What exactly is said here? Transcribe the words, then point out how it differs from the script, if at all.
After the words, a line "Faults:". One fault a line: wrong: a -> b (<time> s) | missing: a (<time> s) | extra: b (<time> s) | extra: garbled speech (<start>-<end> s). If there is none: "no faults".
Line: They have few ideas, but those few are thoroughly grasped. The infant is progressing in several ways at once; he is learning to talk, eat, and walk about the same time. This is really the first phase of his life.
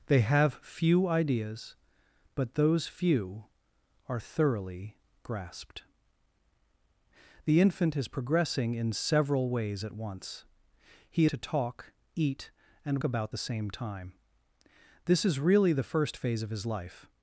They have few ideas, but those few are thoroughly grasped. The infant is progressing in several ways at once; he to talk, eat, and about the same time. This is really the first phase of his life.
Faults:
missing: is learning (11.2 s)
missing: walk (13.0 s)